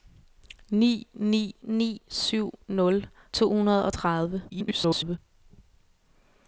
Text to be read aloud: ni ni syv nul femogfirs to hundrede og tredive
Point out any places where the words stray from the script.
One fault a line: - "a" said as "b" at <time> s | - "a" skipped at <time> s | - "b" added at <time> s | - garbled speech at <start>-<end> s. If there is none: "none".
- "ni" added at 1.6 s
- "femogfirs" skipped at 3.1 s
- garbled speech at 4.5-5.2 s